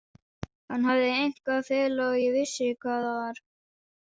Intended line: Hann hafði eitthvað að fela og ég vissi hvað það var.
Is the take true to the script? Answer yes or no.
yes